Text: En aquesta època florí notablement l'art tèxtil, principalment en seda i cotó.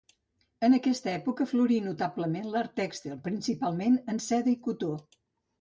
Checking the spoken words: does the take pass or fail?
pass